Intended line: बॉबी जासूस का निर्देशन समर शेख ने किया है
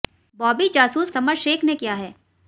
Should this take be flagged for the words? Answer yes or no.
yes